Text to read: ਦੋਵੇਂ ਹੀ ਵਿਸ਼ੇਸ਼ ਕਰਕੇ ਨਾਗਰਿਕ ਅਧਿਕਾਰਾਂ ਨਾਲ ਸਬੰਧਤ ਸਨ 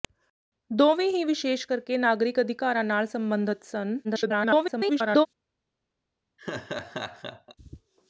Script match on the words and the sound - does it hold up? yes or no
no